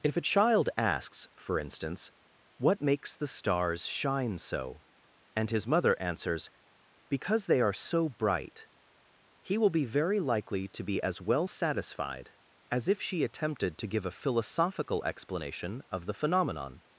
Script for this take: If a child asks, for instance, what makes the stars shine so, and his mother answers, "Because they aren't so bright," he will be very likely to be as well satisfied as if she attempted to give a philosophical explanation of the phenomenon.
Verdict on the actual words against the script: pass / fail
fail